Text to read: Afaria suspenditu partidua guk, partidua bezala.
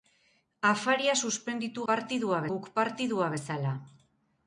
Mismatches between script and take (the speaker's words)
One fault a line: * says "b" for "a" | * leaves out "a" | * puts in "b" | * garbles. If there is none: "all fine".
all fine